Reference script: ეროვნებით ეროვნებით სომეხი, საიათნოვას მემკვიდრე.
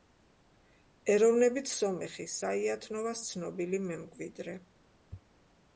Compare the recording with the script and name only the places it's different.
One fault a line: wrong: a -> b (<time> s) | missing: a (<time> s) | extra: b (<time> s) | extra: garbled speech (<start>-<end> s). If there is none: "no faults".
missing: ეროვნებით (1.7 s)
extra: ცნობილი (3.3 s)